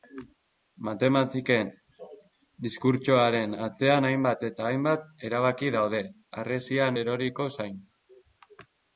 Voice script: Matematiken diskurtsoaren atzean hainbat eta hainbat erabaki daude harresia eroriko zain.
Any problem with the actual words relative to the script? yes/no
no